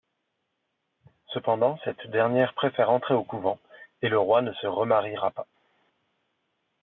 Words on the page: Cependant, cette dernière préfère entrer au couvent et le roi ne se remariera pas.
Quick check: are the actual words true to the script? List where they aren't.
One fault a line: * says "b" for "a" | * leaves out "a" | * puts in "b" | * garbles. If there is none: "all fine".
all fine